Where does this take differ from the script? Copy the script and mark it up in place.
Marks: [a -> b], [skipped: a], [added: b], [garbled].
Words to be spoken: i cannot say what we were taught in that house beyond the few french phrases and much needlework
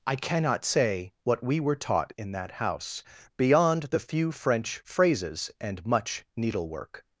i cannot say what we were taught in that house beyond the few french phrases and much needlework